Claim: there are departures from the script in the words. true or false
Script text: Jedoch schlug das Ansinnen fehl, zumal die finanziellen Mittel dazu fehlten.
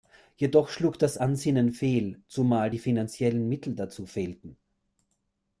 false